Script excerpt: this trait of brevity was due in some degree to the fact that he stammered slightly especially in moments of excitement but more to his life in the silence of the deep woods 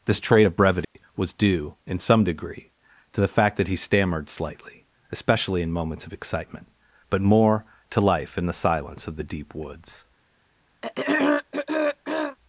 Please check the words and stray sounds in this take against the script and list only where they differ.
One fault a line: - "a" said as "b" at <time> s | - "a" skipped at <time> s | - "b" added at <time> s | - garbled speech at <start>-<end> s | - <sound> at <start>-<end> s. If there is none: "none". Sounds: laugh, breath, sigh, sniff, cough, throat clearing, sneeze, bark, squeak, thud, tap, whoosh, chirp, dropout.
- dropout at 0.8-1.0 s
- "his" skipped at 8.0 s
- throat clearing at 10.8-12.4 s